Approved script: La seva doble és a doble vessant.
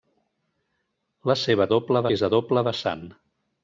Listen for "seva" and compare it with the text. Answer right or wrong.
right